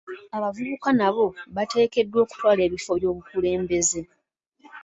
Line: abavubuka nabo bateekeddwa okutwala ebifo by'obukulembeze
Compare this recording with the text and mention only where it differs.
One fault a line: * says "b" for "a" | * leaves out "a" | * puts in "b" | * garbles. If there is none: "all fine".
all fine